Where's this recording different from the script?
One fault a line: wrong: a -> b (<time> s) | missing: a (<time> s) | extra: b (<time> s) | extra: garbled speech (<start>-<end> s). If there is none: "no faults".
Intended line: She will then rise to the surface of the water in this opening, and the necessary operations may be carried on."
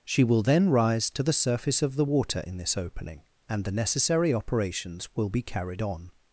wrong: may -> will (5.1 s)